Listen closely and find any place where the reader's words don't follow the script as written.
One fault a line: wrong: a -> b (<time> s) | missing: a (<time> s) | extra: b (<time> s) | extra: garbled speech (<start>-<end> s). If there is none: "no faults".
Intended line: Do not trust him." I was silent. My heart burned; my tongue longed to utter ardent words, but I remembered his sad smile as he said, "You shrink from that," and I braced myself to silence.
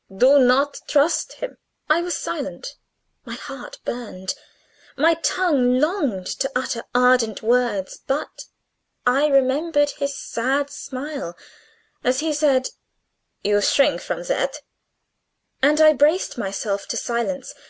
no faults